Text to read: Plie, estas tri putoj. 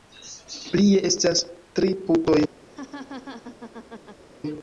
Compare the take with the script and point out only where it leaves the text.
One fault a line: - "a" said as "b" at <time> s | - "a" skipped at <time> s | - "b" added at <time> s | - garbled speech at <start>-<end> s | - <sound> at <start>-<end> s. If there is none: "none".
- laugh at 2.7-4.2 s